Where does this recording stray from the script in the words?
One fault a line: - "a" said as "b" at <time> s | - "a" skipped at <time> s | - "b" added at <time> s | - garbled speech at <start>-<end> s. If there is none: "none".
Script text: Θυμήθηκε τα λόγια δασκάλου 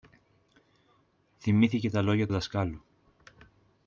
none